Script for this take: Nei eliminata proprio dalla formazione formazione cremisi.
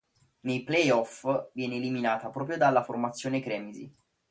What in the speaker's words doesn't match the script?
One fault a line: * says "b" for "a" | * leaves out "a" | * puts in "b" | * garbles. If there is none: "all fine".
* puts in "play off viene"
* leaves out "formazione"